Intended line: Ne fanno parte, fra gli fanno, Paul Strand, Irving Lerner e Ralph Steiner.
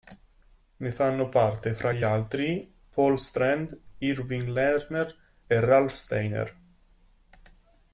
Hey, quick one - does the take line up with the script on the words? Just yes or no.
no